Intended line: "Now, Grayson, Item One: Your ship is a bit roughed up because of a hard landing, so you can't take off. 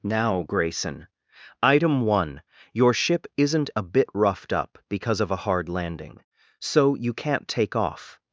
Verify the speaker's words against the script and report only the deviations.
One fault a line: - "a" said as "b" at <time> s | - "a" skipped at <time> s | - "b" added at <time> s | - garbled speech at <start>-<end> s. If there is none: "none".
- "is" said as "isn't" at 3.4 s